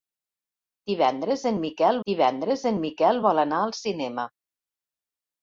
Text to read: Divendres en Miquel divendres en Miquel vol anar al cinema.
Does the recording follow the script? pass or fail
pass